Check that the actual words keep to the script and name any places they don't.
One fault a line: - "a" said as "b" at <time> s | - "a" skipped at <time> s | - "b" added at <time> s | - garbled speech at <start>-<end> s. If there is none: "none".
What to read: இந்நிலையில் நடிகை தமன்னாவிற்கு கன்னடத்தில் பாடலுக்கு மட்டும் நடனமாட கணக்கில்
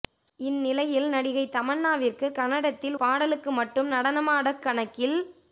none